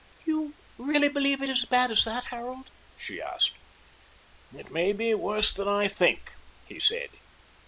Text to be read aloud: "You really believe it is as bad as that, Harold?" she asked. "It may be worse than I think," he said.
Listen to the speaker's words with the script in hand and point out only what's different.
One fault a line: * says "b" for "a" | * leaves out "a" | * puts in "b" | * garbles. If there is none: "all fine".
all fine